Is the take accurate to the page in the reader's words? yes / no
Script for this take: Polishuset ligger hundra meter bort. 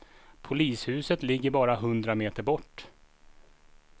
no